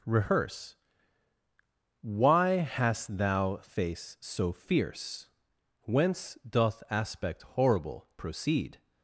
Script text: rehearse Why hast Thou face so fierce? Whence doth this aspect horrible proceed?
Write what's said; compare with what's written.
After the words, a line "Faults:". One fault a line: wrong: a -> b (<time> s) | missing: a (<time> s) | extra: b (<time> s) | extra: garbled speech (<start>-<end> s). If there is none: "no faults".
rehearse Why hast Thou face so fierce? Whence doth aspect horrible proceed?
Faults:
missing: this (6.8 s)